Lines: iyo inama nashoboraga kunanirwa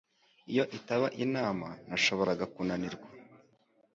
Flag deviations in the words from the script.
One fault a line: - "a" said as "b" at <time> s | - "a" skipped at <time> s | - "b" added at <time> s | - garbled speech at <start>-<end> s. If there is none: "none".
- "itaba" added at 0.8 s